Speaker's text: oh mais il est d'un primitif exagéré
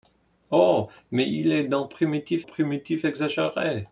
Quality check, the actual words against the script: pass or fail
fail